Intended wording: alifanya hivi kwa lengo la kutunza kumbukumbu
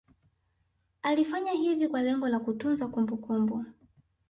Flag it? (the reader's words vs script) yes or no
no